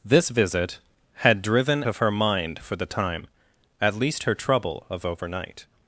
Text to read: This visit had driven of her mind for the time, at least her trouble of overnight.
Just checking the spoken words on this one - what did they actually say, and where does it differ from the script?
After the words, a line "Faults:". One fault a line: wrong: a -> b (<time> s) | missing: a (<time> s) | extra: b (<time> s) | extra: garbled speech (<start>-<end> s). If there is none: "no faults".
This visit had driven of her mind for the time, at least her trouble of overnight.
Faults:
no faults